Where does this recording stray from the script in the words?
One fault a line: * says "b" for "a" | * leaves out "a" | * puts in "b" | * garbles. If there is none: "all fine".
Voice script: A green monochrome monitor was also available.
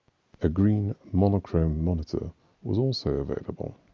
all fine